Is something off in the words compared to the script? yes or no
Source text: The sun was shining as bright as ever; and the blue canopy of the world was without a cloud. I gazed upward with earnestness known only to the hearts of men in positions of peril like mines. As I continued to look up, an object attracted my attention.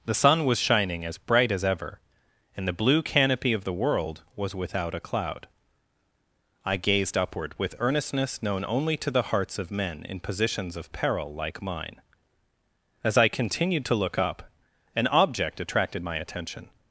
yes